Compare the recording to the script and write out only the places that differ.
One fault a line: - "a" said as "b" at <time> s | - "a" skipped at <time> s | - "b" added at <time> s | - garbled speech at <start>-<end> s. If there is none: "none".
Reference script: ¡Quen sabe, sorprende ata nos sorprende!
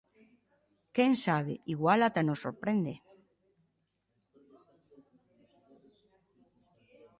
- "sorprende" said as "igual" at 1.7 s